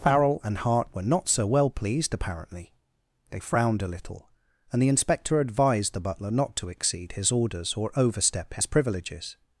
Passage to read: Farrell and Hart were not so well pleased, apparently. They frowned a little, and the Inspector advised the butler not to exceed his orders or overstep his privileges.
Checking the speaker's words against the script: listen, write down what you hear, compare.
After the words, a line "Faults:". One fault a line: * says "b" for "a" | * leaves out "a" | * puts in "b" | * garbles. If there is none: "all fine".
Farrell and Hart were not so well pleased, apparently. They frowned a little, and the Inspector advised the butler not to exceed his orders or overstep his privileges.
Faults:
all fine